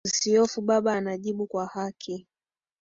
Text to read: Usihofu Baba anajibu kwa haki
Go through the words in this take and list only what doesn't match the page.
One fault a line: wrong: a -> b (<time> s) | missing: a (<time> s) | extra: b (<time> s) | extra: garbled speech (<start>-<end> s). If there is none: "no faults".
no faults